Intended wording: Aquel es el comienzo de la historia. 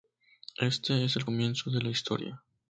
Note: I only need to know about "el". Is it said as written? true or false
true